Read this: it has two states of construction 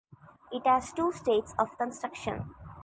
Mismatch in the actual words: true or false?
false